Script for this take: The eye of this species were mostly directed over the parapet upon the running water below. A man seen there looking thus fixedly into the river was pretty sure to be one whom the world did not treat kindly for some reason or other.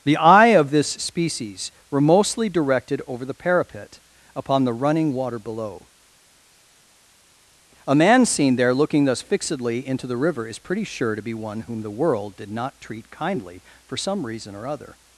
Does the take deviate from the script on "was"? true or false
true